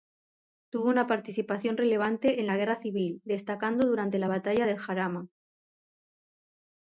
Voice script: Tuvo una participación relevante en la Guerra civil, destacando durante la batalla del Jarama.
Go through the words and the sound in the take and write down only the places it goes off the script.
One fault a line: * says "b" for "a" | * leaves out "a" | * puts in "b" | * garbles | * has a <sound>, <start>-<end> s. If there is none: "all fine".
all fine